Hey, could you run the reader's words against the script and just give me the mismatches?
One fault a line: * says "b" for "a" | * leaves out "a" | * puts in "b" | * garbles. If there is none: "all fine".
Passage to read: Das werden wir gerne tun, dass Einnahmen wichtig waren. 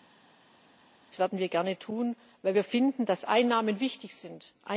* puts in "weil wir finden"
* says "sind" for "waren"